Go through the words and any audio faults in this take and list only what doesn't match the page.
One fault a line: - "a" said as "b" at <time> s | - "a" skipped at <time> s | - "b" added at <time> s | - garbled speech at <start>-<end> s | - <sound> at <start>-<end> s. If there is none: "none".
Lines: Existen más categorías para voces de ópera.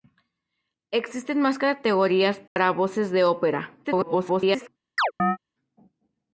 - dropout at 2.5-2.6 s
- garbled speech at 3.8-4.7 s
- chirp at 5.0-5.4 s